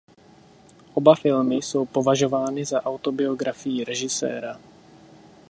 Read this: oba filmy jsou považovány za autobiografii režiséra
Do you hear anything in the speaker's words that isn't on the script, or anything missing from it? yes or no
no